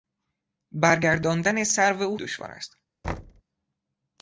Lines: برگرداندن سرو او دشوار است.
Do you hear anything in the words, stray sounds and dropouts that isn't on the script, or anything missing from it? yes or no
yes